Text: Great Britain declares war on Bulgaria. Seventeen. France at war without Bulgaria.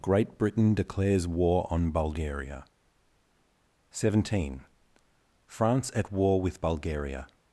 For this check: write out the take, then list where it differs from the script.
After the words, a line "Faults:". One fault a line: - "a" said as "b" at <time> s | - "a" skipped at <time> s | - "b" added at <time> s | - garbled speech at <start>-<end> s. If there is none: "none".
Great Britain declares war on Bulgaria. Seventeen. France at war with Bulgaria.
Faults:
- "without" said as "with" at 6.4 s